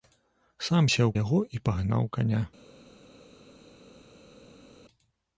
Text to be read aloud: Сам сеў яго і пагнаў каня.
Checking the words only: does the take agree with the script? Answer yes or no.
yes